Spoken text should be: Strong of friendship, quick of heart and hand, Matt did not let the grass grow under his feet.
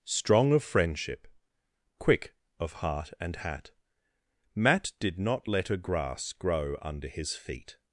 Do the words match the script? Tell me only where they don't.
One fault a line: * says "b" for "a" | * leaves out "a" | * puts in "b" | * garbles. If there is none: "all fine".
* says "hat" for "hand"
* says "a" for "the"